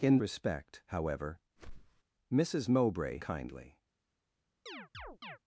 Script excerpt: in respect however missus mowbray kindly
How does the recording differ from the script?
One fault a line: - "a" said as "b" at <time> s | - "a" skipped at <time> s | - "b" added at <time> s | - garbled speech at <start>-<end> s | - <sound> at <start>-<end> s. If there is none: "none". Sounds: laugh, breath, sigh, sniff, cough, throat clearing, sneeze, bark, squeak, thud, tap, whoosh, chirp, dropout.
- whoosh at 1.6-2.0 s
- chirp at 4.7-5.4 s